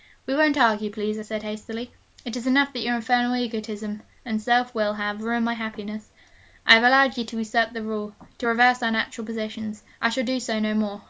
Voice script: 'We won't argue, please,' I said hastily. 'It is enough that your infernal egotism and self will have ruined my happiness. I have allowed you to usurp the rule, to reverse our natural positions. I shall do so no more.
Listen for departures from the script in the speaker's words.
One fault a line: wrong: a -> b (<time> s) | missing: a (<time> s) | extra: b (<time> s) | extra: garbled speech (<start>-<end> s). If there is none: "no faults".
no faults